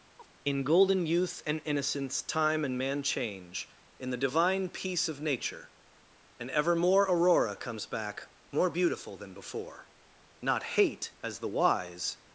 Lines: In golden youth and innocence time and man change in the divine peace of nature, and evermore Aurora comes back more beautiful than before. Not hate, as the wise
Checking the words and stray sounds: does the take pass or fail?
fail